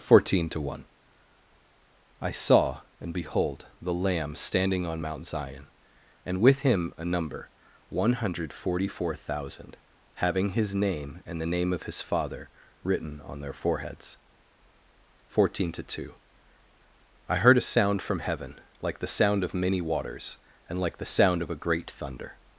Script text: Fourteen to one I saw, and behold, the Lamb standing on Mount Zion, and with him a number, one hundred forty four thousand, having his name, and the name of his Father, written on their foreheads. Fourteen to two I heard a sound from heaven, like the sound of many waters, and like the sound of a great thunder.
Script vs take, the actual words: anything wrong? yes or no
no